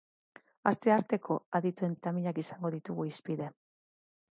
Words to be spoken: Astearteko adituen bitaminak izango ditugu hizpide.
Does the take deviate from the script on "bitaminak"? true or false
false